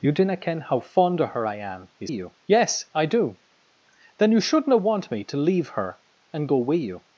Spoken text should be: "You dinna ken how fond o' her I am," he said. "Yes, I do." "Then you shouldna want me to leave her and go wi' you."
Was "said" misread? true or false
true